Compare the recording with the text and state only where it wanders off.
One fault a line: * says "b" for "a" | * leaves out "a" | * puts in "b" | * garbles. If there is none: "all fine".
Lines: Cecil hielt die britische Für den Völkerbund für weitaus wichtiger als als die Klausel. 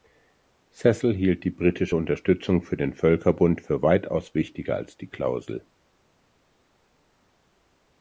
* puts in "Unterstützung"
* leaves out "als"